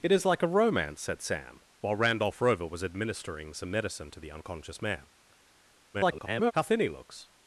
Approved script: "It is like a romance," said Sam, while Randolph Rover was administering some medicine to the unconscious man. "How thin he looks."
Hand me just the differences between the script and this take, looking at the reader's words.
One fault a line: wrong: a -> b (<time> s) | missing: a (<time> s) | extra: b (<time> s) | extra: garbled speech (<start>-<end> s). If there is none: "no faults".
extra: garbled speech (5.9-6.5 s)